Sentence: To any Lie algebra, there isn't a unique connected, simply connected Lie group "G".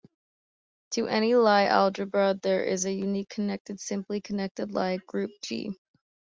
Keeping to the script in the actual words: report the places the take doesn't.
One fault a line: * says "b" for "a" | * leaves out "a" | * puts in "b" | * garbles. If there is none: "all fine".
* says "is" for "isn't"